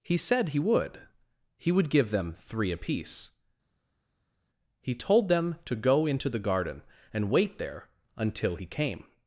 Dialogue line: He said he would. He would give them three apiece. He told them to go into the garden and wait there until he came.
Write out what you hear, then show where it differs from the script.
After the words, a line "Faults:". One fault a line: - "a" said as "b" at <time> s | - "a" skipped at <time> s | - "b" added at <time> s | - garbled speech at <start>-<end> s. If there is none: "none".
He said he would. He would give them three apiece. He told them to go into the garden and wait there until he came.
Faults:
none